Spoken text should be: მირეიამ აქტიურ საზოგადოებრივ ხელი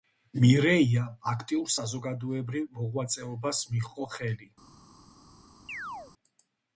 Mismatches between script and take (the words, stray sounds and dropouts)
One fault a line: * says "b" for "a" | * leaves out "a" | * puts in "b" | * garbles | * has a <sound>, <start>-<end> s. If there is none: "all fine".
* puts in "მოღვაწეობას მიჰყო"
* has a chirp, 5.7-6.1 s